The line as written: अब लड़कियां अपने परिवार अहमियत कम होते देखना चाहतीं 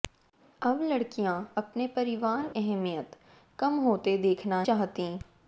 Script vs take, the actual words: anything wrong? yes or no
no